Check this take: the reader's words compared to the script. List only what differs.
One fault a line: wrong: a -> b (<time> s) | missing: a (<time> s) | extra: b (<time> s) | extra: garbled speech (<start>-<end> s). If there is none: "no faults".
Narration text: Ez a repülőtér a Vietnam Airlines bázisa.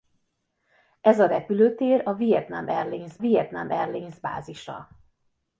extra: Vietnam Airlines (3.2 s)